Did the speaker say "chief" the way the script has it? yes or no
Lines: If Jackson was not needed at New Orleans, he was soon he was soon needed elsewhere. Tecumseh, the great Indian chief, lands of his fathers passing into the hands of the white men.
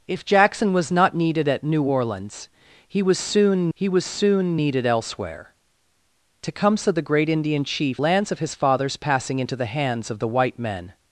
yes